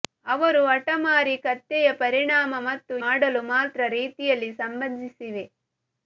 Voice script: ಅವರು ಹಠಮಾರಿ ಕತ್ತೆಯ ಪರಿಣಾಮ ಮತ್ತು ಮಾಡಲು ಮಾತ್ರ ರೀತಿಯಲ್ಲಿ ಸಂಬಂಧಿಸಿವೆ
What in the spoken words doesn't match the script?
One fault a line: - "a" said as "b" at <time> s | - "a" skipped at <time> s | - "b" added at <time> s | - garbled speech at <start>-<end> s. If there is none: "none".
none